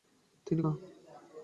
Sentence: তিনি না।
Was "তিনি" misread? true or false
false